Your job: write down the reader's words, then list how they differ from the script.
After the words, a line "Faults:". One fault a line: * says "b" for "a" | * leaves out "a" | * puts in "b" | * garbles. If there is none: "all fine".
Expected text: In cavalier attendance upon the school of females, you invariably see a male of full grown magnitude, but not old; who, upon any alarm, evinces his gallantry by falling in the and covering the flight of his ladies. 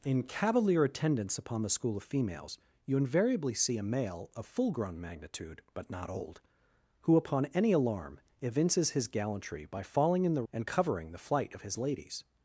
In cavalier attendance upon the school of females, you invariably see a male of full grown magnitude, but not old; who, upon any alarm, evinces his gallantry by falling in the and covering the flight of his ladies.
Faults:
all fine